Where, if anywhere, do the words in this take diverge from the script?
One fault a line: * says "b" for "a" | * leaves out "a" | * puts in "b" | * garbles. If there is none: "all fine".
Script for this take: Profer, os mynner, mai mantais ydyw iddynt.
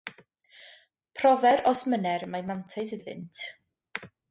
* leaves out "ydyw"